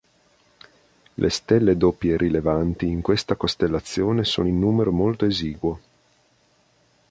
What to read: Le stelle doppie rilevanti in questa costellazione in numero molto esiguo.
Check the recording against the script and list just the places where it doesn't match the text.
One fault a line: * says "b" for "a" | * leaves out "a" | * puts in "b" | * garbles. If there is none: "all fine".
* puts in "sono"